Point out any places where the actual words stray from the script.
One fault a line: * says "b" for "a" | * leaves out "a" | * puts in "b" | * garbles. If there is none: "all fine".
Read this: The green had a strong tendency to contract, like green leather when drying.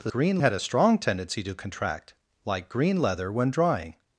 all fine